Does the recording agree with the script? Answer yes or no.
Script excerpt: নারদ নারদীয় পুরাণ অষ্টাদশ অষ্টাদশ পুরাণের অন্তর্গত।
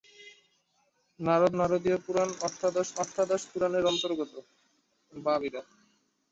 yes